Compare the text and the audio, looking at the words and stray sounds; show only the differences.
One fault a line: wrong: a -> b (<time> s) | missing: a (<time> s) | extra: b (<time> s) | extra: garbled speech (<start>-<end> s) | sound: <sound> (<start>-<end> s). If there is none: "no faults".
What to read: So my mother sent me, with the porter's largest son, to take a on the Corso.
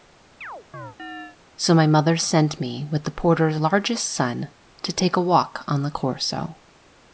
sound: chirp (0.4-1.4 s)
extra: walk (5.2 s)